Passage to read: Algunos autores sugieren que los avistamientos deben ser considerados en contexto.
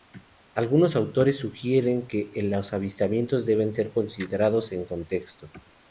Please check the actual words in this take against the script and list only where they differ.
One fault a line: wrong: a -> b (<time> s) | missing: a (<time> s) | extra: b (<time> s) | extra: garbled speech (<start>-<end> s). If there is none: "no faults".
no faults